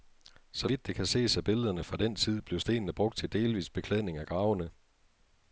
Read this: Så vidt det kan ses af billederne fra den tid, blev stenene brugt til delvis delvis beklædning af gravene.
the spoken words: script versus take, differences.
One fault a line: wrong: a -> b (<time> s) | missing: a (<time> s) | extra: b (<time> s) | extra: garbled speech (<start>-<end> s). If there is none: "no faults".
missing: delvis (3.7 s)